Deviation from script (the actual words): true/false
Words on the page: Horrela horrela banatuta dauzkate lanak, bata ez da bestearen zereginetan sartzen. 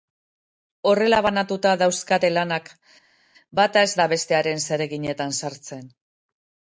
true